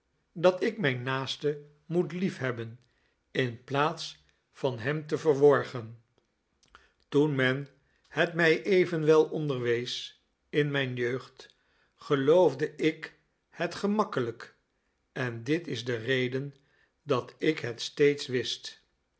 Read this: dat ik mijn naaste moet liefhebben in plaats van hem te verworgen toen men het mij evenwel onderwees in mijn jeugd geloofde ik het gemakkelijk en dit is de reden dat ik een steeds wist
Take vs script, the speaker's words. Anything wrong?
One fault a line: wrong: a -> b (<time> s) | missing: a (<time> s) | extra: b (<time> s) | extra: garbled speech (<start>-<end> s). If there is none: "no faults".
wrong: een -> het (17.6 s)